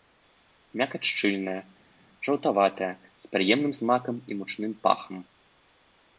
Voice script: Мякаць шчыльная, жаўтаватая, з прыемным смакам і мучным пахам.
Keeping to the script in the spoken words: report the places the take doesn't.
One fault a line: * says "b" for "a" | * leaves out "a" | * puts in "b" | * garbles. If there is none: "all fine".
all fine